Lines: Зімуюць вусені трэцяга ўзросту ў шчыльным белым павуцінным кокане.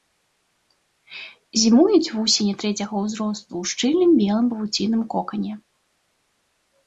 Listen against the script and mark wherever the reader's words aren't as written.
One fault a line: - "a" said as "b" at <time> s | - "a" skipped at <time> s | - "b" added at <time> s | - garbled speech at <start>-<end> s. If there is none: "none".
none